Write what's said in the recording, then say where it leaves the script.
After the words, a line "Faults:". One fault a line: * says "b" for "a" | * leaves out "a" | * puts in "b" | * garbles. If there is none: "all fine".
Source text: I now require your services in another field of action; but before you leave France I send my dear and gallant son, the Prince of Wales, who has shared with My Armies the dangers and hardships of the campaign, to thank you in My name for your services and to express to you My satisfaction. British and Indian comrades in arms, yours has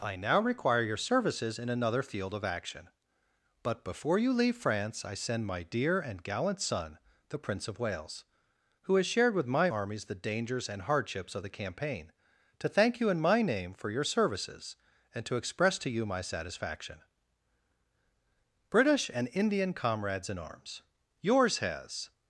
I now require your services in another field of action; but before you leave France I send my dear and gallant son, the Prince of Wales, who has shared with My Armies the dangers and hardships of the campaign, to thank you in My name for your services and to express to you My satisfaction. British and Indian comrades in arms, yours has
Faults:
all fine